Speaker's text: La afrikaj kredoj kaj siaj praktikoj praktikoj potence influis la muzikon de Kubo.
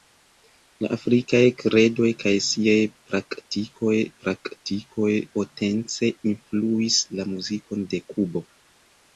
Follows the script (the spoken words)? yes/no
yes